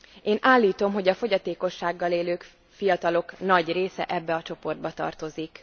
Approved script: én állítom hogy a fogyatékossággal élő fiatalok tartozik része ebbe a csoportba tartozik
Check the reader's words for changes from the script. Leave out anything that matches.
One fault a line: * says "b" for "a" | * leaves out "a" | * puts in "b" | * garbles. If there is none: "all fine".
* says "nagy" for "tartozik"